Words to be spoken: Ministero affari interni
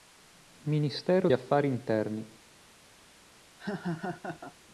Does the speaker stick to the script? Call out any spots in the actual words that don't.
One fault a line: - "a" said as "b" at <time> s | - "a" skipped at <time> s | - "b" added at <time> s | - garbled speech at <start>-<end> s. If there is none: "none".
none